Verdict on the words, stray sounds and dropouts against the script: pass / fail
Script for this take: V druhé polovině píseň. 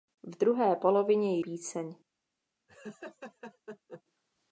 fail